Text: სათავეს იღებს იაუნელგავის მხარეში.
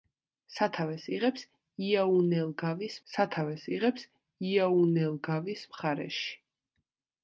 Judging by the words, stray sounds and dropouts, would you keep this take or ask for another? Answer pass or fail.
fail